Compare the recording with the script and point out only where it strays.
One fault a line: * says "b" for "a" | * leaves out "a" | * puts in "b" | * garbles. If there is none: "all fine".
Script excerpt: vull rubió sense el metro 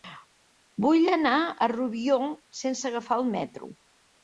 * puts in "anar a"
* puts in "agafar"